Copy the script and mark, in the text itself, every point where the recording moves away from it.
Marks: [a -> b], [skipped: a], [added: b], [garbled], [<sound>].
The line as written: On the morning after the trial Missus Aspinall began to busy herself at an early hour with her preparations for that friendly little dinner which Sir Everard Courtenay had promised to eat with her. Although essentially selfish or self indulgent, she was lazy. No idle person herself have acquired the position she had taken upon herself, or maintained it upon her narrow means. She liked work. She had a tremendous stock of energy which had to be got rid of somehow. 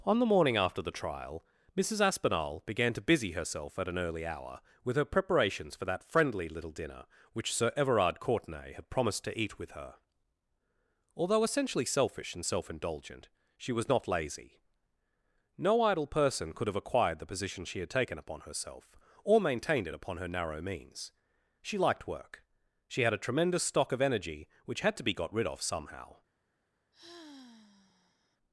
On the morning after the trial Missus Aspinall began to busy herself at an early hour with her preparations for that friendly little dinner which Sir Everard Courtenay had promised to eat with her. Although essentially selfish [or -> and] self indulgent, she was [added: not] lazy. No idle person [herself -> could] have acquired the position she had taken upon herself, or maintained it upon her narrow means. She liked work. She had a tremendous stock of energy which had to be got rid of somehow. [sigh]